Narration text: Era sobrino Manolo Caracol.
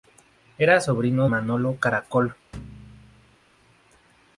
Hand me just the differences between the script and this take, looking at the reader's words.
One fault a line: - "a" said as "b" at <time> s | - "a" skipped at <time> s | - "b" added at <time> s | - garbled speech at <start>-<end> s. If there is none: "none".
none